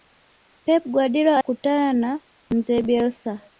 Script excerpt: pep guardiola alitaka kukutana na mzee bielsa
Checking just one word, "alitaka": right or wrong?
wrong